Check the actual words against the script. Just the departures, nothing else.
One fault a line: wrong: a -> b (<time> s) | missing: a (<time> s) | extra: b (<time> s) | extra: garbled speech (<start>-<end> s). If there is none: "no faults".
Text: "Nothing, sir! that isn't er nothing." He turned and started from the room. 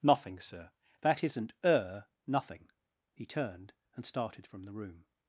no faults